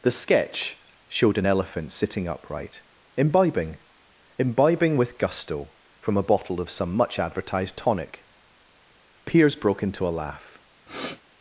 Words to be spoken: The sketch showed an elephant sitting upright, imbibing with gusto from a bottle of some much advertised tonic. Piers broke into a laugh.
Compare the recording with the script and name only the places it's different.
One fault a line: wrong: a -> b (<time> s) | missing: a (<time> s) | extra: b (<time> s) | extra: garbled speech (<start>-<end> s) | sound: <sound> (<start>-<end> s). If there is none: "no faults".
extra: imbibing (4.4 s)
sound: sniff (10.9-11.2 s)